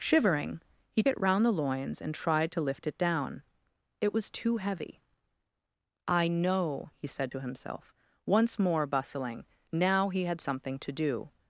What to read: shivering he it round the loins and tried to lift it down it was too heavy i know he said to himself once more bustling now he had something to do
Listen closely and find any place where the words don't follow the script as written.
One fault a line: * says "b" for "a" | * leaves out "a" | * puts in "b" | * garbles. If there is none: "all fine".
all fine